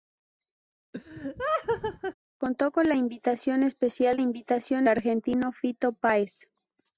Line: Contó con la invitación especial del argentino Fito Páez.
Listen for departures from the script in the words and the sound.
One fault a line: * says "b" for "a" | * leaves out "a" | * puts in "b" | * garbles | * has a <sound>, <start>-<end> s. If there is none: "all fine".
* has a laugh, 0.9-2.1 s
* says "invitación" for "del"